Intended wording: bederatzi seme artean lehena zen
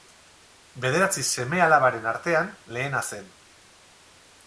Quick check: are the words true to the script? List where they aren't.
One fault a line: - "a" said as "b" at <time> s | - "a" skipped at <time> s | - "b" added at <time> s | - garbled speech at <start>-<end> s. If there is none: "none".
- "alabaren" added at 1.7 s